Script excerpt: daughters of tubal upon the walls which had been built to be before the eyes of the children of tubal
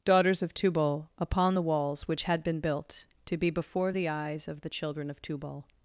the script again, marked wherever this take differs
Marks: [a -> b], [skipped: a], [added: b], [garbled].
daughters of tubal upon the walls which had been built to be before the eyes of the children of tubal